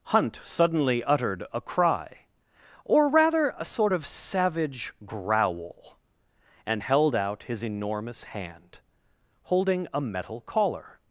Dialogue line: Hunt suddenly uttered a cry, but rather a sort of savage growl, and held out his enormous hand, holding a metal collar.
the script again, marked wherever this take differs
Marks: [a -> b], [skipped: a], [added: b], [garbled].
Hunt suddenly uttered a cry, [but -> or] rather a sort of savage growl, and held out his enormous hand, holding a metal collar.